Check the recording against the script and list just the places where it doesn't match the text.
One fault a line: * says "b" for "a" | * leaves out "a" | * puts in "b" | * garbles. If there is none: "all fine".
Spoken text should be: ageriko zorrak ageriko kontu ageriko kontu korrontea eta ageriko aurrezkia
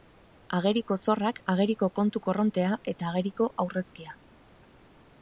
* leaves out "ageriko kontu"